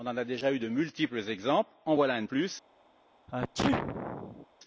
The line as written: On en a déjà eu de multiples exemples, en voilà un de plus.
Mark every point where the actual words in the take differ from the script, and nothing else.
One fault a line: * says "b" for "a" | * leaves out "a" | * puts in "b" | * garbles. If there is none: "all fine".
all fine